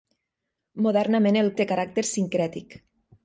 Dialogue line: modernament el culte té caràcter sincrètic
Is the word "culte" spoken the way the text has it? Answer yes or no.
no